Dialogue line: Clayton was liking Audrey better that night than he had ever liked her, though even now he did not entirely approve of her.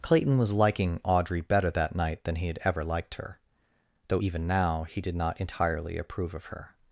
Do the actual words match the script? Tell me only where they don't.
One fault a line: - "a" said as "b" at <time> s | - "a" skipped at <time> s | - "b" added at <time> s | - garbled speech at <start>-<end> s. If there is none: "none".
none